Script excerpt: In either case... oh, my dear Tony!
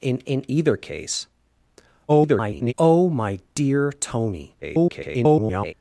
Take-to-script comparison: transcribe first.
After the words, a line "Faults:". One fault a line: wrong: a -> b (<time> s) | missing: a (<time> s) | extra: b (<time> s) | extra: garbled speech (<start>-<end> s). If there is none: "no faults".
In in either case... [garbled] oh, my dear Tony! [garbled]
Faults:
extra: in (0.3 s)
extra: garbled speech (2.1-2.7 s)
extra: garbled speech (4.6-5.7 s)